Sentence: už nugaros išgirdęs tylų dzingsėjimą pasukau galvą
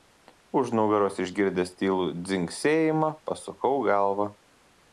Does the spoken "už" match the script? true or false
true